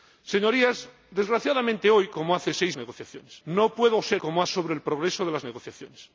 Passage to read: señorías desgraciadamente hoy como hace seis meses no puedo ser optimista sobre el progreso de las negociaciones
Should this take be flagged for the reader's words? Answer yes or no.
yes